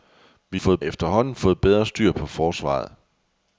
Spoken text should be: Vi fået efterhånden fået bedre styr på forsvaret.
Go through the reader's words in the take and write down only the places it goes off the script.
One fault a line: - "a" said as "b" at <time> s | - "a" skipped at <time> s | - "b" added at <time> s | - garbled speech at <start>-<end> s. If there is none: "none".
none